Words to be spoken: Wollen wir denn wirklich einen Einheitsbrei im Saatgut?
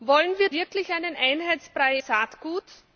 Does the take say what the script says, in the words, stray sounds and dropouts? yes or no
no